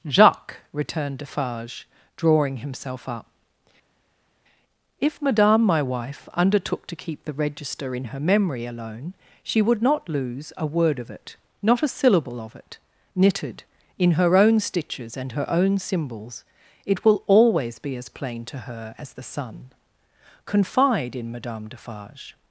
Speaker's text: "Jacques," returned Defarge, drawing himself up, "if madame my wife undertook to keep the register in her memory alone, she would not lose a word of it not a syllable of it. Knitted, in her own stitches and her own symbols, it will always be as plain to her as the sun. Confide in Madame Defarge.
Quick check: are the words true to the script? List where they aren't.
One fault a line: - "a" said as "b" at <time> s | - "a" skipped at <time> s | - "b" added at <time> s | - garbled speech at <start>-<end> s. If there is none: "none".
none